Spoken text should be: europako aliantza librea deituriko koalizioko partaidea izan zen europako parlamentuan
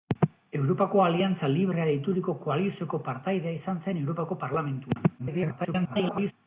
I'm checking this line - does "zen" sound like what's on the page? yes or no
yes